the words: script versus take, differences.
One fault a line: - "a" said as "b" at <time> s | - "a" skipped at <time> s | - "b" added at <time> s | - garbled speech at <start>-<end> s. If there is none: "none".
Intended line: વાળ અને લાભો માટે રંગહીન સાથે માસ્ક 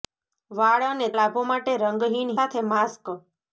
none